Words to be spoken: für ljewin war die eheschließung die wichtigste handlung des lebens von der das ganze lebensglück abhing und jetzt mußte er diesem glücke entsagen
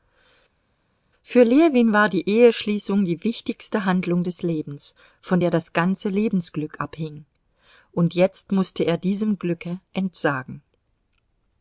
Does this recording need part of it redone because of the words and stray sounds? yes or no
no